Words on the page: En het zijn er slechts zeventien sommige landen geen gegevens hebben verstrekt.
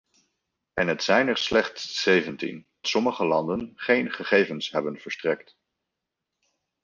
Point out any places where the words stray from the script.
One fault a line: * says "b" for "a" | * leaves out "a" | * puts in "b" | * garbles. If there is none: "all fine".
all fine